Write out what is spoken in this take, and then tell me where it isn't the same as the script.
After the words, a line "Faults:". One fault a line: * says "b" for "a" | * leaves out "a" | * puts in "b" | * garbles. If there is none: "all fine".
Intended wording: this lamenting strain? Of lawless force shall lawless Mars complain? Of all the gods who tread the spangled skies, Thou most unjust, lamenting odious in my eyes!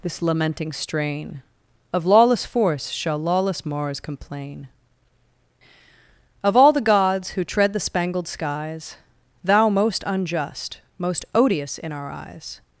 this lamenting strain? Of lawless force shall lawless Mars complain? Of all the gods who tread the spangled skies, Thou most unjust, most odious in our eyes!
Faults:
* says "most" for "lamenting"
* says "our" for "my"